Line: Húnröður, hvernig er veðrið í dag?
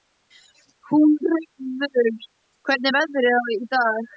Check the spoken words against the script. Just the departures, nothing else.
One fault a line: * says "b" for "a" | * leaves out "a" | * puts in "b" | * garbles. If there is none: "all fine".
all fine